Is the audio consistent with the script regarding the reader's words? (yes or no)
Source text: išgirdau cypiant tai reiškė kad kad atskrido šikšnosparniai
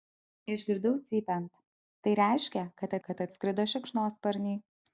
yes